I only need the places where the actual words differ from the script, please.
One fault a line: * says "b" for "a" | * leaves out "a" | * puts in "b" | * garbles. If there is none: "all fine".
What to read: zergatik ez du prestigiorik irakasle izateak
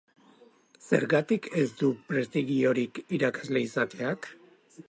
all fine